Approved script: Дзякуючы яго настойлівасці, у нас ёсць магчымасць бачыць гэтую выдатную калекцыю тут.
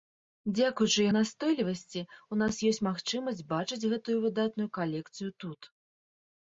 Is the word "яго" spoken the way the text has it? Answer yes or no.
no